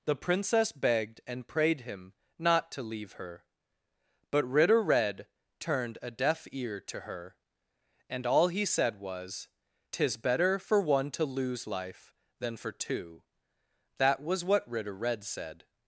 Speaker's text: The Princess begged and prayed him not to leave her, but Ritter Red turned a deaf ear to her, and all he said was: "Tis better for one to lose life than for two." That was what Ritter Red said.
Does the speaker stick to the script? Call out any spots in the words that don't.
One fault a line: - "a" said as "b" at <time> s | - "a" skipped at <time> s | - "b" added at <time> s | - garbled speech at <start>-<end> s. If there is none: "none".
none